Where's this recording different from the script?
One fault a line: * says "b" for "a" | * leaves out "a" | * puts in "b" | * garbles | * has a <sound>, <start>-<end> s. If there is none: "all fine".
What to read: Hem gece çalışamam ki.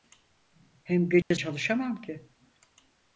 * has a dropout, 1.2-1.3 s